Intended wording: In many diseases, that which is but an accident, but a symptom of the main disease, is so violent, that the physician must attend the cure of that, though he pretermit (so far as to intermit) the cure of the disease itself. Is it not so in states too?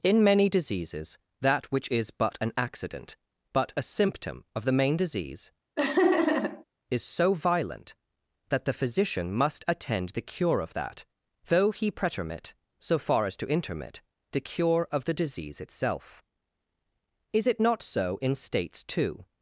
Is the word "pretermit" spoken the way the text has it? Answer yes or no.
yes